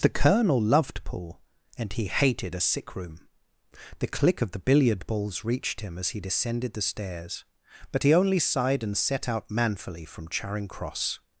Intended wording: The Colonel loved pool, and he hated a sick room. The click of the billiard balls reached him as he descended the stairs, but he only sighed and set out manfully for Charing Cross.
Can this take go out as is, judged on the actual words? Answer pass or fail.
fail